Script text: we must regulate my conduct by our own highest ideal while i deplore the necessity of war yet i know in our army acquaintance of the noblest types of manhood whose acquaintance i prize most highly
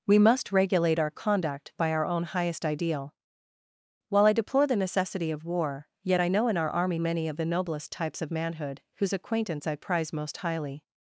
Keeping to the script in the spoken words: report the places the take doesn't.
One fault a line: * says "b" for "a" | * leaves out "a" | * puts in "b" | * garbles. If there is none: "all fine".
* says "our" for "my"
* says "many" for "acquaintance"